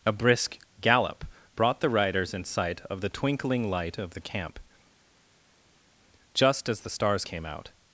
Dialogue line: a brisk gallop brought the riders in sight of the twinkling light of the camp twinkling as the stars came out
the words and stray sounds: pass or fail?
fail